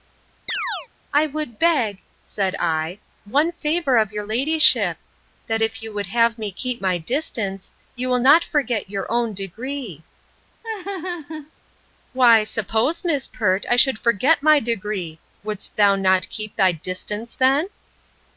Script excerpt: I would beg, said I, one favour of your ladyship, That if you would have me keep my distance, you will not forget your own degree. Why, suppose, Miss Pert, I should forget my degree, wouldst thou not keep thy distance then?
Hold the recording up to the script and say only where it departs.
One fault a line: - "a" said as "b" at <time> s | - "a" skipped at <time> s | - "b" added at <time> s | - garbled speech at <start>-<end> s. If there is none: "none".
none